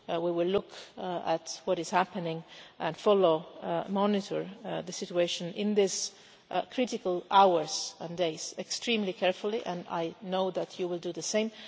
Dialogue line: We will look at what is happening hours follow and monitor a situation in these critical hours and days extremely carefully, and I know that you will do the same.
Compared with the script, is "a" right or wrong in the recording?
wrong